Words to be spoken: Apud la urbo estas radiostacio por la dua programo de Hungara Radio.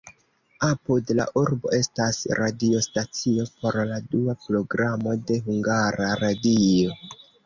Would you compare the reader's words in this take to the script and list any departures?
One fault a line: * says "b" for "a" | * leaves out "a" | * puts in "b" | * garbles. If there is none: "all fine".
all fine